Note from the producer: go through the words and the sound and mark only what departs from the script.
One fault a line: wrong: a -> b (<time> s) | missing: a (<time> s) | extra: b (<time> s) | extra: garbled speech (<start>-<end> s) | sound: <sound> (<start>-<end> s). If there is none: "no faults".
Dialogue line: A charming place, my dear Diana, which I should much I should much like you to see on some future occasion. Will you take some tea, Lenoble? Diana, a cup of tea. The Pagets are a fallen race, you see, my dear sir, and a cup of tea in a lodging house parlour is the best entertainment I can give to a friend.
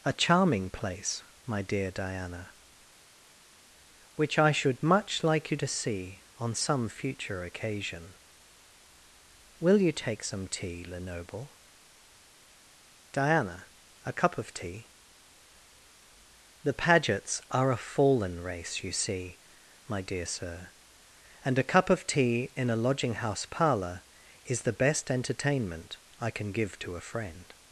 missing: I should much (5.2 s)